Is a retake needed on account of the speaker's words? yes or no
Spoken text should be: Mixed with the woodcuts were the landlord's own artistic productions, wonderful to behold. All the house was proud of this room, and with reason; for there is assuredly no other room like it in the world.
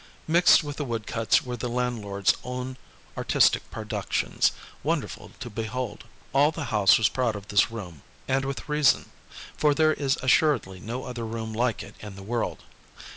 no